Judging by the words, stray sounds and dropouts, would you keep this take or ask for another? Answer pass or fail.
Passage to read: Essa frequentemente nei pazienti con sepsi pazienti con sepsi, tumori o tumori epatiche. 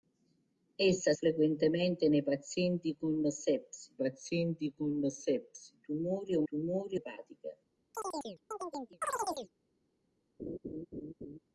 fail